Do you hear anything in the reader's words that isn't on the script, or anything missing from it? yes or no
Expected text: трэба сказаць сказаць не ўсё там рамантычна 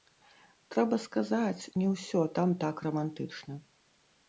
yes